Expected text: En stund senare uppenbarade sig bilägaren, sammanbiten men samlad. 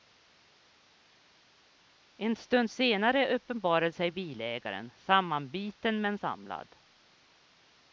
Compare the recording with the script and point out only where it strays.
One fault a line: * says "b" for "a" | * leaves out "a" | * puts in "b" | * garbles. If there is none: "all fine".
all fine